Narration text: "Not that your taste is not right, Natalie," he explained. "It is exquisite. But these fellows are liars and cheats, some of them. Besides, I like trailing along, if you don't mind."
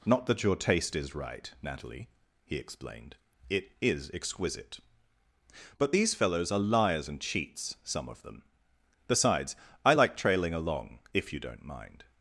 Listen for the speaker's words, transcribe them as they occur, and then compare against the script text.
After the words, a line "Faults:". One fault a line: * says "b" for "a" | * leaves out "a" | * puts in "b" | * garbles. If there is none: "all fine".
"Not that your taste is right, Natalie," he explained. "It is exquisite. But these fellows are liars and cheats, some of them. Besides, I like trailing along, if you don't mind."
Faults:
* leaves out "not"